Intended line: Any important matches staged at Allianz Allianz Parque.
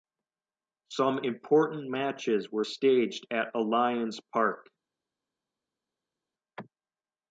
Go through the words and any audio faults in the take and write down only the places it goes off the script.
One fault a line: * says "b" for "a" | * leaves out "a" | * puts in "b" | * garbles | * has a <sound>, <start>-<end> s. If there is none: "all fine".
* says "Some" for "Any"
* puts in "were"
* leaves out "Allianz"